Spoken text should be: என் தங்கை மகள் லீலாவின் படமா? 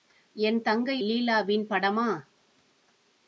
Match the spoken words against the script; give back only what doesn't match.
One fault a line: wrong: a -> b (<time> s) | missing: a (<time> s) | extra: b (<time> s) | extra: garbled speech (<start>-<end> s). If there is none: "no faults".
missing: மகள் (1.0 s)